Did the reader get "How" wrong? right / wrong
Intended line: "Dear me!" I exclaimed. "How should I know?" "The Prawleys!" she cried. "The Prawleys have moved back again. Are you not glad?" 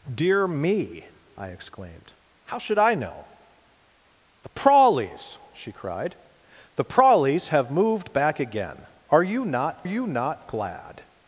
right